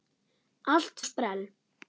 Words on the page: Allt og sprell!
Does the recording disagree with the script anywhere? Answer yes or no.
no